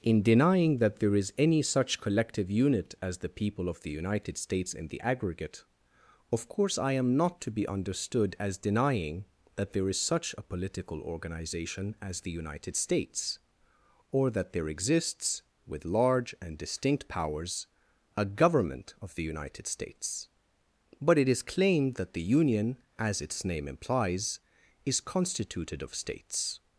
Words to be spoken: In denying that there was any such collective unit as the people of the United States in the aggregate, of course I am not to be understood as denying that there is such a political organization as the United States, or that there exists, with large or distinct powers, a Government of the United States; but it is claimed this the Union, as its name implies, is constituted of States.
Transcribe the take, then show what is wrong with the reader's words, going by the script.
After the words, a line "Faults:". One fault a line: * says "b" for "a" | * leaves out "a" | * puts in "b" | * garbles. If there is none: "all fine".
In denying that there is any such collective unit as the people of the United States in the aggregate, of course I am not to be understood as denying that there is such a political organization as the United States, or that there exists, with large and distinct powers, a Government of the United States; but it is claimed that the Union, as its name implies, is constituted of States.
Faults:
* says "is" for "was"
* says "and" for "or"
* says "that" for "this"